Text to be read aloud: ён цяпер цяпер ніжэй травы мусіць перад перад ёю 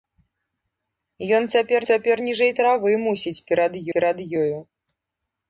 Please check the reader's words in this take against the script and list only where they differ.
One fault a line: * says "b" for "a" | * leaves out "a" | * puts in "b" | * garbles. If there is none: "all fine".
all fine